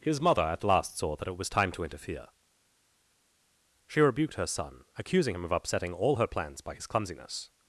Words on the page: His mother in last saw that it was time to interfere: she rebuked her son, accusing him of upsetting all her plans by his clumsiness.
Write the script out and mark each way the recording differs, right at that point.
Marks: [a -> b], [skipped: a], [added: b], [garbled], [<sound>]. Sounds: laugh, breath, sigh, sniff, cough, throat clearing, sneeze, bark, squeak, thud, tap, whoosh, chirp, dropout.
His mother [in -> at] last saw that it was time to interfere: she rebuked her son, accusing him of upsetting all her plans by his clumsiness.